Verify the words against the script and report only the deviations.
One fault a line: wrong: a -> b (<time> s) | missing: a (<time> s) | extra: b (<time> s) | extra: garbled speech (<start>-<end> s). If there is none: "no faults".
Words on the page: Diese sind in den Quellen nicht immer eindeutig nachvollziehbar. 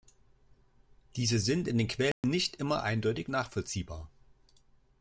no faults